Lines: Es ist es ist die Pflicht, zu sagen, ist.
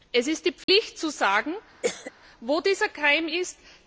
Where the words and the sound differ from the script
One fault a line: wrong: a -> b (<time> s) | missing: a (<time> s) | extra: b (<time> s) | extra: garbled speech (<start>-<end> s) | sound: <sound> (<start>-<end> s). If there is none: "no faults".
missing: es ist (0.5 s)
sound: dropout (0.6-0.7 s)
sound: cough (1.8-2.1 s)
extra: wo dieser Keim (2.4 s)